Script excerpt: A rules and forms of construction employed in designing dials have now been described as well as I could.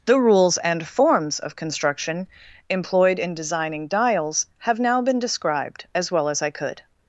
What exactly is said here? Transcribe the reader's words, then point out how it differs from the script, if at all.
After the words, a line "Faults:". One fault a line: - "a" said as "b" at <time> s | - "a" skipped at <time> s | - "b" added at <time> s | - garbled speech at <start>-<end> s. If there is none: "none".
The rules and forms of construction employed in designing dials have now been described as well as I could.
Faults:
- "A" said as "The" at 0.1 s